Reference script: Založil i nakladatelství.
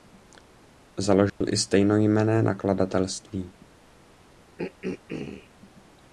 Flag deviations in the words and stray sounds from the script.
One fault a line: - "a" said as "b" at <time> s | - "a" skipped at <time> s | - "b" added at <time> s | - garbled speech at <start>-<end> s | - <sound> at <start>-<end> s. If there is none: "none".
- dropout at 1.3-1.4 s
- "stejnojmenné" added at 1.6 s
- throat clearing at 4.6-5.5 s